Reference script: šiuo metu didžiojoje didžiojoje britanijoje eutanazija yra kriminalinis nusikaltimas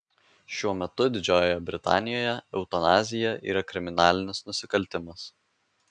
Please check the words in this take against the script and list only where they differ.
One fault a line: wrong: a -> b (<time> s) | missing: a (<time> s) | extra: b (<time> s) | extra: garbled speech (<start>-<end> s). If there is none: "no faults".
missing: didžiojoje (1.6 s)